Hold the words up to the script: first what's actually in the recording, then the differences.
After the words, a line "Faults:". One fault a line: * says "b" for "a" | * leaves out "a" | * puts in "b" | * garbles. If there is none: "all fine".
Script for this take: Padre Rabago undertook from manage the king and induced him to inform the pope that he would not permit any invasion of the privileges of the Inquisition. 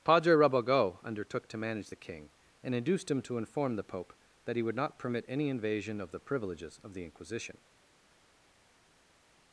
Padre Rabago undertook to manage the king and induced him to inform the pope that he would not permit any invasion of the privileges of the Inquisition.
Faults:
* says "to" for "from"